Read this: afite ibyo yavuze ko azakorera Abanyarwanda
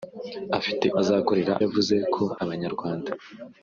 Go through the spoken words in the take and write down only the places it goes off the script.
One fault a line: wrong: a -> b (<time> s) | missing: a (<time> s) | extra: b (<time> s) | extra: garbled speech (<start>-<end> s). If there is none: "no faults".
wrong: ibyo -> azakorera (1.0 s)
missing: azakorera (2.2 s)